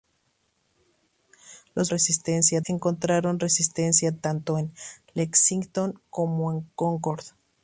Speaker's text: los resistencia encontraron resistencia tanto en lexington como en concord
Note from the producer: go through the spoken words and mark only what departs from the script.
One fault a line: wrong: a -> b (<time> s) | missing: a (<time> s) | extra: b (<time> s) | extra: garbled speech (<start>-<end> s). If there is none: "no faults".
no faults